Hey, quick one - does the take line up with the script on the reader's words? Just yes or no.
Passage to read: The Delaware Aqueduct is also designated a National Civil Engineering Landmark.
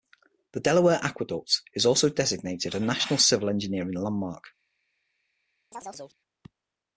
yes